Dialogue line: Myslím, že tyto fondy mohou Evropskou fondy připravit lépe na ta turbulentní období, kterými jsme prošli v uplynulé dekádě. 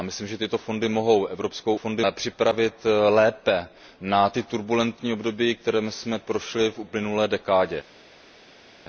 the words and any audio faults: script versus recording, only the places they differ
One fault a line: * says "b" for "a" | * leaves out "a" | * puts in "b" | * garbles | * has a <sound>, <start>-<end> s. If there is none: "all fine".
all fine